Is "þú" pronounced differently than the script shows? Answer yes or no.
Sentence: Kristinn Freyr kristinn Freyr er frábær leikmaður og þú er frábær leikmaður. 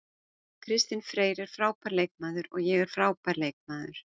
yes